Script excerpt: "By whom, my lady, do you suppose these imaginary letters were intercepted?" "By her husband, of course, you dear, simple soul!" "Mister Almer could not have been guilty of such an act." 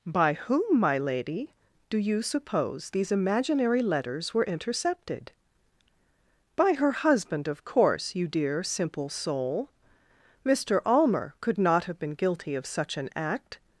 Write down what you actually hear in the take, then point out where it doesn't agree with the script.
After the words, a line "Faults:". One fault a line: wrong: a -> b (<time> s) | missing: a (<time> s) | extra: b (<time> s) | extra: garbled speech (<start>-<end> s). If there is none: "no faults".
"By whom, my lady, do you suppose these imaginary letters were intercepted?" "By her husband, of course, you dear, simple soul!" "Mister Almer could not have been guilty of such an act."
Faults:
no faults